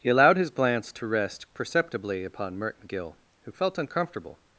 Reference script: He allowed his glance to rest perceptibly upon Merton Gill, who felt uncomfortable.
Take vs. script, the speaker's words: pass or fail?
pass